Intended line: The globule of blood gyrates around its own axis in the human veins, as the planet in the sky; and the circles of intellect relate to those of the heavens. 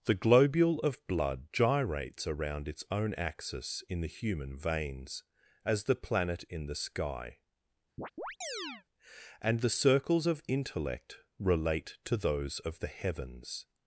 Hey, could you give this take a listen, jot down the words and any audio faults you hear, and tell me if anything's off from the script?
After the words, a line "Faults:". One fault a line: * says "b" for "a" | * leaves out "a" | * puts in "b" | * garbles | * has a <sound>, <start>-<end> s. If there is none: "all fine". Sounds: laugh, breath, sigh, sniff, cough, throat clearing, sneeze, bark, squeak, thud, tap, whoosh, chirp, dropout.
The globule of blood gyrates around its own axis in the human veins, as the planet in the sky; and the circles of intellect relate to those of the heavens.
Faults:
* has a chirp, 8.0-8.8 s